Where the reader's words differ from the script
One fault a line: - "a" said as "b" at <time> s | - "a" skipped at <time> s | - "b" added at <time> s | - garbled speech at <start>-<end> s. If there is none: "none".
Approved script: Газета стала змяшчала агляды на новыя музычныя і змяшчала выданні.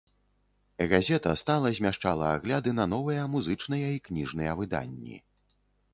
- "змяшчала" said as "кніжныя" at 4.1 s